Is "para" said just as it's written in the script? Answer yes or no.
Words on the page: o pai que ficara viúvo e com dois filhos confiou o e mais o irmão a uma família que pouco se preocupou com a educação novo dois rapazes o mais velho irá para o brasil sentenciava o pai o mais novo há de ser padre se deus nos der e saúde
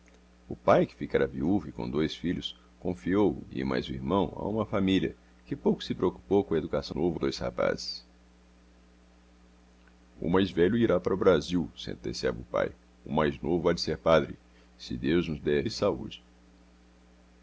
yes